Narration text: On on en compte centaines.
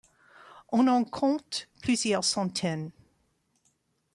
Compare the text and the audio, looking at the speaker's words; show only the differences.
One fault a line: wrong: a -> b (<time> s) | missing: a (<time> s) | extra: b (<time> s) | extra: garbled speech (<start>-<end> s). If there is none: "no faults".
missing: on (0.9 s)
extra: plusieurs (1.8 s)